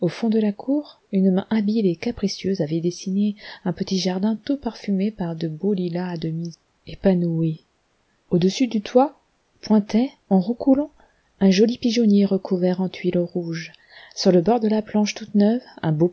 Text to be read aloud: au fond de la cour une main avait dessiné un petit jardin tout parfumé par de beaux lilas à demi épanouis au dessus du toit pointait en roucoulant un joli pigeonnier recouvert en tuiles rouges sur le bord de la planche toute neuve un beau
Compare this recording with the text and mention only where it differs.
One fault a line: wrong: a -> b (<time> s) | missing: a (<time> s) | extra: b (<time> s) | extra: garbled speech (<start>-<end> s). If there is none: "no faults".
extra: habile et capricieuse (1.5 s)